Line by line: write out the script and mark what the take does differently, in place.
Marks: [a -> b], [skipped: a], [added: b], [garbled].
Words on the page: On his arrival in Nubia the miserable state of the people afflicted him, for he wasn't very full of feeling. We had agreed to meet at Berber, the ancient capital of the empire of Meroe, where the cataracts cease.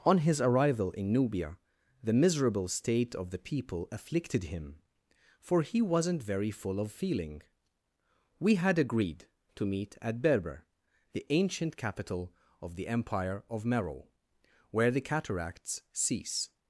On his arrival in Nubia the miserable state of the people afflicted him, for he wasn't very full of feeling. We had agreed to meet at Berber, the ancient capital of the empire of Meroe, where the cataracts cease.